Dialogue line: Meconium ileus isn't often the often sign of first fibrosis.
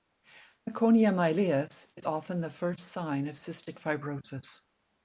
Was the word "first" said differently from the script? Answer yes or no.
yes